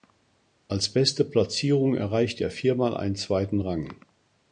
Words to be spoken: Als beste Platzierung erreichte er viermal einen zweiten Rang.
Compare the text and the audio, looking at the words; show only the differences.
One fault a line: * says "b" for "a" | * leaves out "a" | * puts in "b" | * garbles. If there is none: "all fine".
all fine